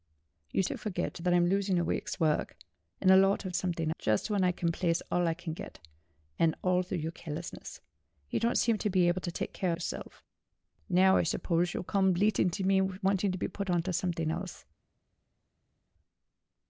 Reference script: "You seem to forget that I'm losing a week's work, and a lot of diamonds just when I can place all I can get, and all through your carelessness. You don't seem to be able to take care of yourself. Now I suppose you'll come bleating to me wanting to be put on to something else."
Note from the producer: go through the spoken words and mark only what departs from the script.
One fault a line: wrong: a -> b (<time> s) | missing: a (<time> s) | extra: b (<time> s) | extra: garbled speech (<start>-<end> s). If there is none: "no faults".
missing: seem (0.6 s)
wrong: diamonds -> something (3.5 s)
missing: of (9.7 s)